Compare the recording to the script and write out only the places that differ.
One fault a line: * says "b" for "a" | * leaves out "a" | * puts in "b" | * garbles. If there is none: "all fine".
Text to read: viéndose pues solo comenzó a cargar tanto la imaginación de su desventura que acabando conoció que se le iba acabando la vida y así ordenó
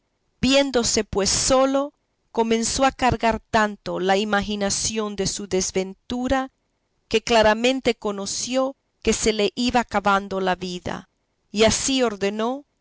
* says "claramente" for "acabando"